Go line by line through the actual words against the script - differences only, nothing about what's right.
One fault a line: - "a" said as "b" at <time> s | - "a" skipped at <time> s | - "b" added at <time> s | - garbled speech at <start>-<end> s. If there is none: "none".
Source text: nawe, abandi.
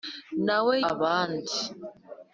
none